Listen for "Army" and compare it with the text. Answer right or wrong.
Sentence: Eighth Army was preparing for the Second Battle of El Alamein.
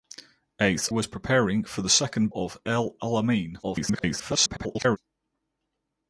wrong